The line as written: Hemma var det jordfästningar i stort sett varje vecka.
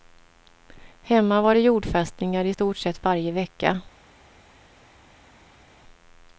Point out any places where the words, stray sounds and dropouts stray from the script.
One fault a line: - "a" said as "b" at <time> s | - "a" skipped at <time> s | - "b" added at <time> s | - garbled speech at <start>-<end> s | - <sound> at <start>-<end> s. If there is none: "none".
none